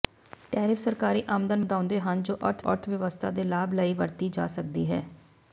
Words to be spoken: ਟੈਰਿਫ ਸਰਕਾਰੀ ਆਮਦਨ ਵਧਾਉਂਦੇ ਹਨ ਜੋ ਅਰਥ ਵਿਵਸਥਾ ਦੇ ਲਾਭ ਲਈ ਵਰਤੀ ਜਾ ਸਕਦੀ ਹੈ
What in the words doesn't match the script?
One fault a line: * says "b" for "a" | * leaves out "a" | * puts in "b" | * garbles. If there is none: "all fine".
* puts in "ਅਰਥ"